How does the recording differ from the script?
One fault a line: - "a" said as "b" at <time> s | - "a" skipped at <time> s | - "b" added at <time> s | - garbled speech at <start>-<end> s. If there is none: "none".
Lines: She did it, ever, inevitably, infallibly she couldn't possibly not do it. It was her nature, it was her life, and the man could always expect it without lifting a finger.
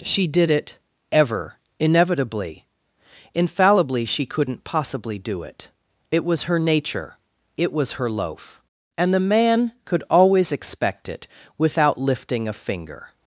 - "not" skipped at 5.2 s
- "life" said as "loaf" at 8.1 s